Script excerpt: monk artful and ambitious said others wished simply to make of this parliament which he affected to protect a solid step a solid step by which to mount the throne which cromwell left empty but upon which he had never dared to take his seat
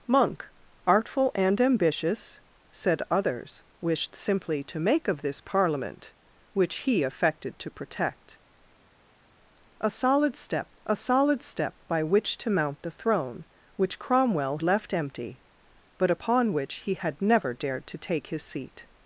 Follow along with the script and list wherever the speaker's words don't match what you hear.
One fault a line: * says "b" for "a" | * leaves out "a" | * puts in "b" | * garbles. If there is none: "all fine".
all fine